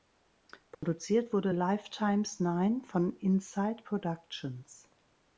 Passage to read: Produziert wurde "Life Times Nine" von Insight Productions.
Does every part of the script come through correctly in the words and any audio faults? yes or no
no